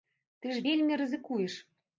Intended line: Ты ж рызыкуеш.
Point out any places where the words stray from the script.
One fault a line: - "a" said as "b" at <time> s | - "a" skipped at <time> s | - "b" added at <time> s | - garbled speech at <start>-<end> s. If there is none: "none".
- "вельмі" added at 0.7 s